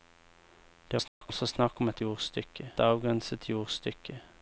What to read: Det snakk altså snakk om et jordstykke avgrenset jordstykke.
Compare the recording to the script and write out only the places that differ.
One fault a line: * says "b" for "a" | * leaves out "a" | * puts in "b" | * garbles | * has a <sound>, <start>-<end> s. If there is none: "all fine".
* has a dropout, 1.1-1.2 s